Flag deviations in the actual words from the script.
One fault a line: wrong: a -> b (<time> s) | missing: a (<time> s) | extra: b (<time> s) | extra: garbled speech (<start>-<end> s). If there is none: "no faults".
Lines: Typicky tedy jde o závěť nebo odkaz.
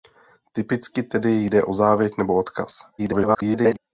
extra: garbled speech (3.0-3.8 s)